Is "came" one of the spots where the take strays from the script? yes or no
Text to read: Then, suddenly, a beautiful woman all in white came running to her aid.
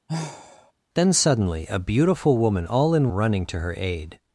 yes